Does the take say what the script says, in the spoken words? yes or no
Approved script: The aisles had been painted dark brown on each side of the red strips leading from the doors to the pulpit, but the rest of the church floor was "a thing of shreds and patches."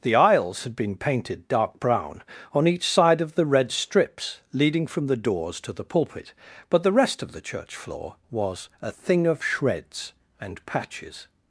yes